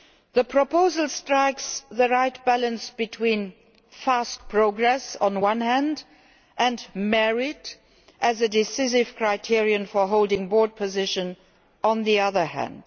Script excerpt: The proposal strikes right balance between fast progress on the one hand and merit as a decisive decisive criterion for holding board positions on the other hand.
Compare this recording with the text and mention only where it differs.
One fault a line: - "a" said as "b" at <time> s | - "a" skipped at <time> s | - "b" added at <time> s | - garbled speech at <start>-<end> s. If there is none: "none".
- "the" added at 1.9 s
- "decisive" skipped at 9.2 s